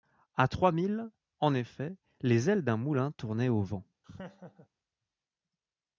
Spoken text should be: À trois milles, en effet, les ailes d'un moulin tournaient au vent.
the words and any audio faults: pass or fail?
fail